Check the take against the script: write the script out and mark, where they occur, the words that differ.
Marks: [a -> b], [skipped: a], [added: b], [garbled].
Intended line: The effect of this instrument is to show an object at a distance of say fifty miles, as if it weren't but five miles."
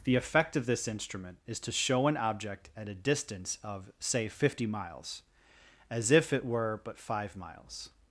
The effect of this instrument is to show an object at a distance of say fifty miles, as if it [weren't -> were] but five miles."